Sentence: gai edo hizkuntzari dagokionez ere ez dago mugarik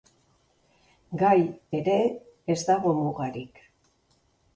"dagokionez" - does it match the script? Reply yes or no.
no